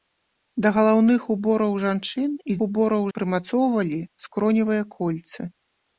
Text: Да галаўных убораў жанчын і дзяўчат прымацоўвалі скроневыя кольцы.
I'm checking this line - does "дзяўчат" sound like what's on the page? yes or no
no